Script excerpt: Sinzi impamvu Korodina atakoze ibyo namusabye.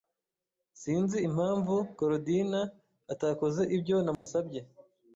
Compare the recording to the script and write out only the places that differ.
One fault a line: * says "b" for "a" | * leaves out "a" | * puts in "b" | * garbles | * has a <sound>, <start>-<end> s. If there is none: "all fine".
* has a dropout, 4.1-4.3 s